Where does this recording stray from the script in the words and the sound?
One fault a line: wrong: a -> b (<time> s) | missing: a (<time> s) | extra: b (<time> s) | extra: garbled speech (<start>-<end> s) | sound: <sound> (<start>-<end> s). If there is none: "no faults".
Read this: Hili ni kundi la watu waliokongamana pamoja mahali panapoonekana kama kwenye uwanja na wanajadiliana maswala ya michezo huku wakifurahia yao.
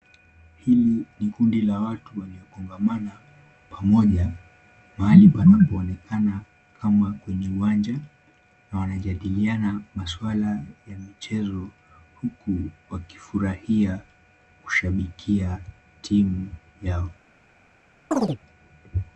extra: kushabikia timu (14.6 s)
sound: chirp (18.1-18.4 s)